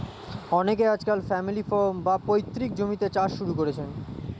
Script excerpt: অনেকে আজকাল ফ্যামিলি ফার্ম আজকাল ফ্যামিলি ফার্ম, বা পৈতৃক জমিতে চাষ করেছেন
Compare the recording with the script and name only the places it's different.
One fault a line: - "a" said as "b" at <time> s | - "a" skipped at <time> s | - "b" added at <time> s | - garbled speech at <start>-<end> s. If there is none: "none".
- "আজকাল ফ্যামিলি ফার্ম" skipped at 1.9 s
- "শুরু" added at 3.4 s